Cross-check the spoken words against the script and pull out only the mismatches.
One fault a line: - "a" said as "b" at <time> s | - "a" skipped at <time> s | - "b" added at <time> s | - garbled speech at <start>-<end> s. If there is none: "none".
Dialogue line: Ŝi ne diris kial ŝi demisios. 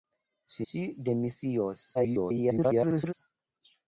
- "ne diris kial" skipped at 0.7 s
- garbled speech at 1.9-3.1 s